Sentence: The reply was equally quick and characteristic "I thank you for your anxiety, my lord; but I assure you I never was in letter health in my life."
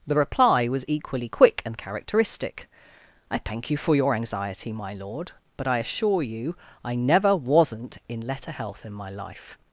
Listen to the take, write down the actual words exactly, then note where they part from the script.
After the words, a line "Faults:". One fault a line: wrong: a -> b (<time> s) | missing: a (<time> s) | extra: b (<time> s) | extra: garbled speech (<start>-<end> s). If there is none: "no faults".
The reply was equally quick and characteristic "I thank you for your anxiety, my lord; but I assure you I never wasn't in letter health in my life."
Faults:
wrong: was -> wasn't (7.4 s)